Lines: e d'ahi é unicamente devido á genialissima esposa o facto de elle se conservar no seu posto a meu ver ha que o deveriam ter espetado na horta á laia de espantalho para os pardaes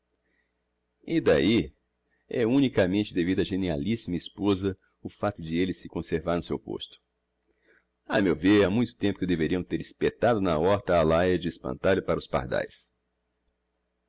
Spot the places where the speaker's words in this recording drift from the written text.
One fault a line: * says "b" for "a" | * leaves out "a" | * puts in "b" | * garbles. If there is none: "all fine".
* puts in "muito tempo"